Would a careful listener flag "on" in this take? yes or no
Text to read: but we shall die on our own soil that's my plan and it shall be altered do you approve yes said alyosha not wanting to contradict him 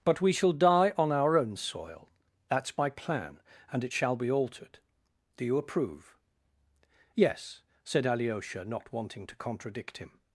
no